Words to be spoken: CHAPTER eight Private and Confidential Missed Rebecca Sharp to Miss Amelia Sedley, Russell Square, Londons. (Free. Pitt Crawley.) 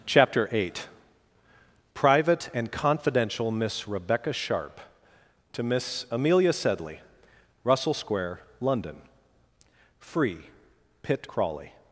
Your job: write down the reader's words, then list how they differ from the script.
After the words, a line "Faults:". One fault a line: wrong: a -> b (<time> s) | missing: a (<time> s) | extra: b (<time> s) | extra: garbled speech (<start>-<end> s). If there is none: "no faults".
CHAPTER eight Private and Confidential Miss Rebecca Sharp to Miss Amelia Sedley, Russell Square, London. (Free. Pitt Crawley.)
Faults:
wrong: Missed -> Miss (3.5 s)
wrong: Londons -> London (8.6 s)